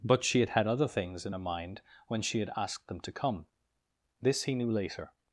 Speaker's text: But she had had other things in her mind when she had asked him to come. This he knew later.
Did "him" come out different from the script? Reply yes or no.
yes